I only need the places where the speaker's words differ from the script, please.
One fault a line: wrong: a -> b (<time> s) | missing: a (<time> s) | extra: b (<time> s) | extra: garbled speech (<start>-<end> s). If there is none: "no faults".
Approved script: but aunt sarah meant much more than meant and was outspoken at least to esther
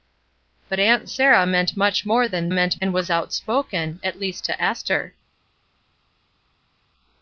no faults